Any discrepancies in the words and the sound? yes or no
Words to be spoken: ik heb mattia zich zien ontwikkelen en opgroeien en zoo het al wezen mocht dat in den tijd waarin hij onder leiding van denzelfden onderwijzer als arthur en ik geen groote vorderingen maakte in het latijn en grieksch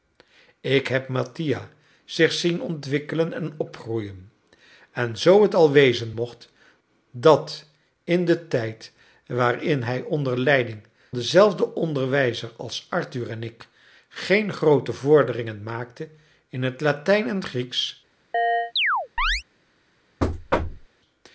yes